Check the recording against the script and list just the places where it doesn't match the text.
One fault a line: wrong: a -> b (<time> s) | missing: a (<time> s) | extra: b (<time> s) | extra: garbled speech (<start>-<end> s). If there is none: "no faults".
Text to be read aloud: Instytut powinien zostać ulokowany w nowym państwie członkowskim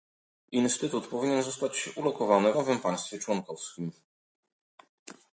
no faults